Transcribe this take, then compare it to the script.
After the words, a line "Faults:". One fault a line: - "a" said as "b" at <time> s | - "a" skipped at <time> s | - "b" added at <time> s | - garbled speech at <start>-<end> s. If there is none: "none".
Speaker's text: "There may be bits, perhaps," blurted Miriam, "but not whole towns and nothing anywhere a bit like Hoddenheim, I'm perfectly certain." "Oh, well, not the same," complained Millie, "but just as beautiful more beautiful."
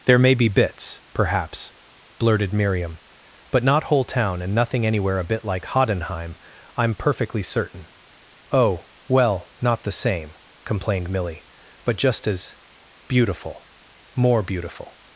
"There may be bits, perhaps," blurted Miriam, "but not whole town and nothing anywhere a bit like Hoddenheim, I'm perfectly certain." "Oh, well, not the same," complained Millie, "but just as beautiful more beautiful."
Faults:
- "towns" said as "town" at 4.0 s